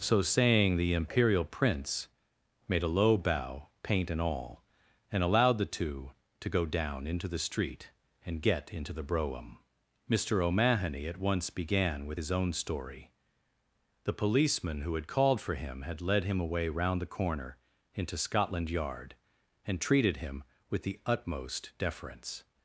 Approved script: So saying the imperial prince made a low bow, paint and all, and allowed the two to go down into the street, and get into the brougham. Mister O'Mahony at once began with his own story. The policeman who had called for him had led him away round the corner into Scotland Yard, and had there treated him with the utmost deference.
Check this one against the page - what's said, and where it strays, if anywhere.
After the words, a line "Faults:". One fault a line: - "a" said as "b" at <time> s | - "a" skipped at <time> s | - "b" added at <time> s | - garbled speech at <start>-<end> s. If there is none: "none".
So saying the imperial prince made a low bow, paint and all, and allowed the two to go down into the street, and get into the brougham. Mister O'Mahony at once began with his own story. The policeman who had called for him had led him away round the corner into Scotland Yard, and treated him with the utmost deference.
Faults:
- "had there" skipped at 19.8 s